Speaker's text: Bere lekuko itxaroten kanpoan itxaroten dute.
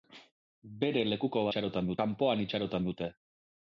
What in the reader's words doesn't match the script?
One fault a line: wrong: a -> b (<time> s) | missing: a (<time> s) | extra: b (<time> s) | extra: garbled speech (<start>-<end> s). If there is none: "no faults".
no faults